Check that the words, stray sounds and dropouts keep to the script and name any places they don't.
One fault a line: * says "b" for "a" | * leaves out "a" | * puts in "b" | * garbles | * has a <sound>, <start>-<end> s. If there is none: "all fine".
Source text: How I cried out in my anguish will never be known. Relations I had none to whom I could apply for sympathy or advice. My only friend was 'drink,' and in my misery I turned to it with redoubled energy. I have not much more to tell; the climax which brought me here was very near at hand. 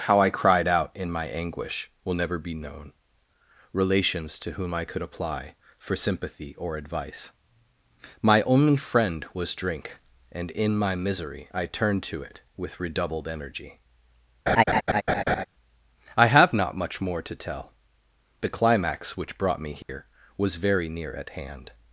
* leaves out "I had none"
* has a laugh, 14.5-15.4 s
* has a dropout, 19.8-19.9 s